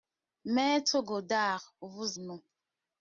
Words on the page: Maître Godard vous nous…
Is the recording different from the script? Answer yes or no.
no